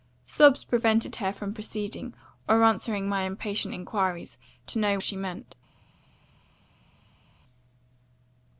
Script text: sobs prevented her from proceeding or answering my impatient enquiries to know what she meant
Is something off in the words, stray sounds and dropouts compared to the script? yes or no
yes